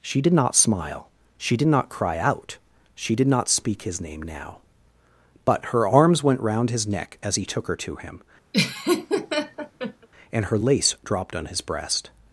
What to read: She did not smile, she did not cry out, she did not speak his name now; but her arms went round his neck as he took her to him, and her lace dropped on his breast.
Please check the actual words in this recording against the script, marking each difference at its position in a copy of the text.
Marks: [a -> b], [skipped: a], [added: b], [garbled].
She did not smile, she did not cry out, she did not speak his name now; but her arms went round his neck as he took her to him, and her lace dropped on his breast.